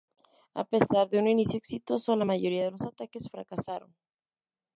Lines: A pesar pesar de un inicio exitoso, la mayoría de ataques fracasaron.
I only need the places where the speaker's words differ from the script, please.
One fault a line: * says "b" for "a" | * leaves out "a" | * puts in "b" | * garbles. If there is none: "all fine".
* leaves out "pesar"
* puts in "los"